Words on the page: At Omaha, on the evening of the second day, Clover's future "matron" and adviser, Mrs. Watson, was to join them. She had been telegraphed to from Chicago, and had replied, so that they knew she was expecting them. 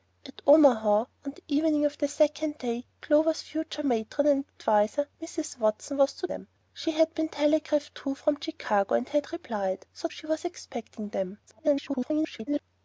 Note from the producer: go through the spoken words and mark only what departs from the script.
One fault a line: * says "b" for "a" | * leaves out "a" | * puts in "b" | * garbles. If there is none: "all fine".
* leaves out "join"
* leaves out "that they knew"
* garbles